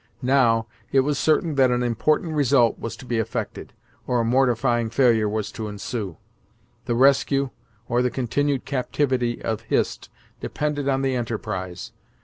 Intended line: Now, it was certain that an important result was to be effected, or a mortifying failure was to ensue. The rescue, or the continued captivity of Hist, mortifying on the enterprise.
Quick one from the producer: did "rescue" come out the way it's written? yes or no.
yes